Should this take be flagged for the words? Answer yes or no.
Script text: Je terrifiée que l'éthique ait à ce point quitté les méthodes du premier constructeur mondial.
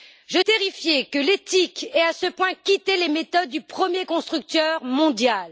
no